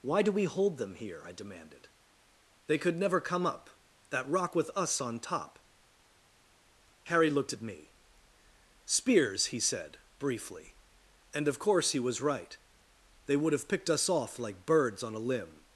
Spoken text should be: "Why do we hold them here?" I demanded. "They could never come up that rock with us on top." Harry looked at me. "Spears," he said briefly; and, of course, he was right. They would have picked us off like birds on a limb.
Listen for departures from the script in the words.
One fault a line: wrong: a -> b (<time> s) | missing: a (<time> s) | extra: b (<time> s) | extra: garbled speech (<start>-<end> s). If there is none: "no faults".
no faults